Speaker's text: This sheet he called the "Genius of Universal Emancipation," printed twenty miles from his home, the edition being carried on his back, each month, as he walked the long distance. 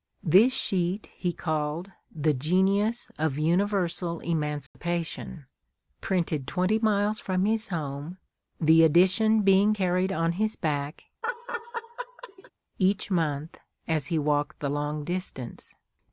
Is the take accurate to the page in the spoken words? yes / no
yes